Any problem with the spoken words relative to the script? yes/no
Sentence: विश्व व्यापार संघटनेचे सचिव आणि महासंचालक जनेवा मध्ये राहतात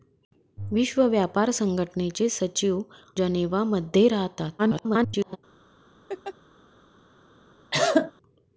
yes